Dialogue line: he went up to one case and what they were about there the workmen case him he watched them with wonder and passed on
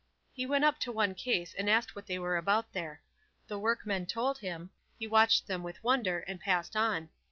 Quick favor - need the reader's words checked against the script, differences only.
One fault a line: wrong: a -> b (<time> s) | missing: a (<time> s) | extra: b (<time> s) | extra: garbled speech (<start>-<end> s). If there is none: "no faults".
extra: asked (1.7 s)
wrong: case -> told (4.1 s)